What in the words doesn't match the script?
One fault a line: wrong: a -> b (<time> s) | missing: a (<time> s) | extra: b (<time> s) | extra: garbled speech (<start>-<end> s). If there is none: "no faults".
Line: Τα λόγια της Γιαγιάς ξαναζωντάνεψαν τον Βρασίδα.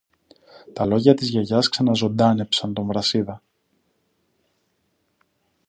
no faults